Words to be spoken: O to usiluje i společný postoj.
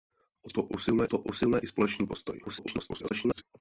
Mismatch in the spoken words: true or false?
true